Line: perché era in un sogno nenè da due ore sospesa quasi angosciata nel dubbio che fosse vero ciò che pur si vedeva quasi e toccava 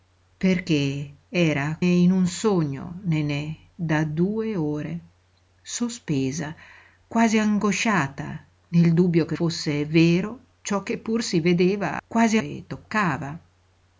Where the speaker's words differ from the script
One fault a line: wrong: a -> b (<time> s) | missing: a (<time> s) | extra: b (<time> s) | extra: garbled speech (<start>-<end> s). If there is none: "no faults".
no faults